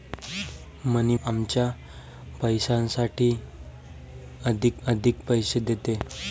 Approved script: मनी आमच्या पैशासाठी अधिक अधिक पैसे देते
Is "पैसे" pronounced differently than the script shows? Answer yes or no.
no